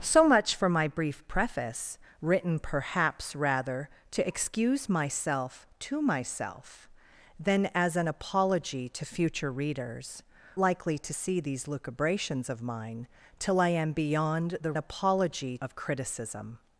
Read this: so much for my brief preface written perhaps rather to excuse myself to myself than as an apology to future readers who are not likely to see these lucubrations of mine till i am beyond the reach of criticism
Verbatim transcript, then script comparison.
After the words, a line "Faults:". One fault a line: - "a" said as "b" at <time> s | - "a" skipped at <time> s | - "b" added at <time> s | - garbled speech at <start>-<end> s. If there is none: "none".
so much for my brief preface written perhaps rather to excuse myself to myself than as an apology to future readers likely to see these lucubrations of mine till i am beyond the apology of criticism
Faults:
- "who are not" skipped at 10.2 s
- "reach" said as "apology" at 14.8 s